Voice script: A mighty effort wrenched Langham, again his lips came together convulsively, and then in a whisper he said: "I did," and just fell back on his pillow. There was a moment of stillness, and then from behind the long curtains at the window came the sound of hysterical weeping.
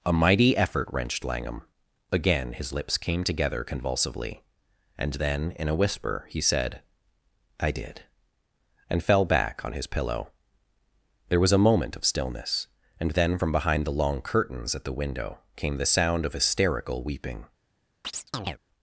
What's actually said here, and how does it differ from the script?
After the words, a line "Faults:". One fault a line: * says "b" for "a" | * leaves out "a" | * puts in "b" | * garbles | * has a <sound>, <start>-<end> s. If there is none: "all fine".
A mighty effort wrenched Langham, again his lips came together convulsively, and then in a whisper he said: "I did," and fell back on his pillow. There was a moment of stillness, and then from behind the long curtains at the window came the sound of hysterical weeping.
Faults:
* leaves out "just"
* has a chirp, 18.0-18.6 s